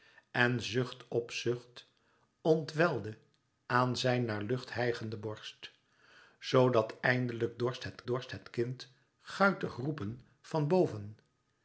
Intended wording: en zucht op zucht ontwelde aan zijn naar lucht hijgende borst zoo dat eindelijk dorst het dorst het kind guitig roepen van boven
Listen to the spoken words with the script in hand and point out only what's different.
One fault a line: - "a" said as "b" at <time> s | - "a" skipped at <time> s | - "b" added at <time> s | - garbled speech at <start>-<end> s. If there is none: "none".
none